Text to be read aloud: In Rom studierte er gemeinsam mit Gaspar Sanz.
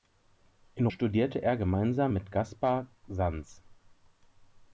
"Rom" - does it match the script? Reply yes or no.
no